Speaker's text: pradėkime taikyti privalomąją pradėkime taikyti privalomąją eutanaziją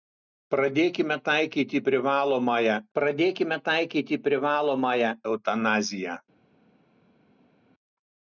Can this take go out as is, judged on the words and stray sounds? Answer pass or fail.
pass